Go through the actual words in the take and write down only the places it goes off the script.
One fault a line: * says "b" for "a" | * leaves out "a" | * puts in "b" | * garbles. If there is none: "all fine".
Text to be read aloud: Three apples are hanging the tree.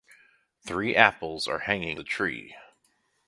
all fine